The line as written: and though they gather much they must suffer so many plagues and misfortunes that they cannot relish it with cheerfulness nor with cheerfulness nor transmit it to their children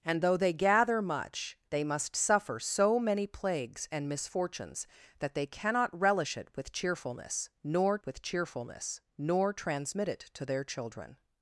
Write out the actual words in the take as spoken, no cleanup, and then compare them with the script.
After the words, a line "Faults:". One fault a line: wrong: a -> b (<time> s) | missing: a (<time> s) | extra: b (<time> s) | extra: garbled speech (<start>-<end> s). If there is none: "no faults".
and though they gather much they must suffer so many plagues and misfortunes that they cannot relish it with cheerfulness nor with cheerfulness nor transmit it to their children
Faults:
no faults